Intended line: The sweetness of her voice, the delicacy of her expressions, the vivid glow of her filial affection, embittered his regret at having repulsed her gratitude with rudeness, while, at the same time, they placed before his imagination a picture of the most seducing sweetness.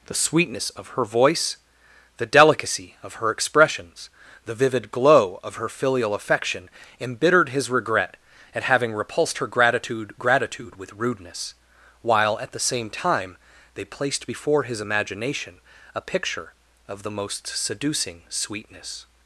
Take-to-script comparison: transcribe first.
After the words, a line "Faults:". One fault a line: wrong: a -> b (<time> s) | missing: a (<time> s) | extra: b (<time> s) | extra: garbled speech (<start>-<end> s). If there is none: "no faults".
The sweetness of her voice, the delicacy of her expressions, the vivid glow of her filial affection, embittered his regret at having repulsed her gratitude gratitude with rudeness, while, at the same time, they placed before his imagination a picture of the most seducing sweetness.
Faults:
extra: gratitude (10.2 s)